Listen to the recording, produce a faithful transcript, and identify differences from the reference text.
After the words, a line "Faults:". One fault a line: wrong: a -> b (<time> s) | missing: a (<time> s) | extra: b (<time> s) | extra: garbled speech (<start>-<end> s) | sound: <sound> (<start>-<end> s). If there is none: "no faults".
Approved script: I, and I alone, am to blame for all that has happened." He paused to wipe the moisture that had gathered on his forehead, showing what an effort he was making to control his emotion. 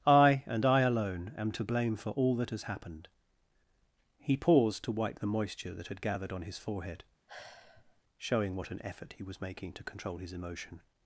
I, and I alone, am to blame for all that has happened." He paused to wipe the moisture that had gathered on his forehead, showing what an effort he was making to control his emotion.
Faults:
sound: sigh (7.3-8.0 s)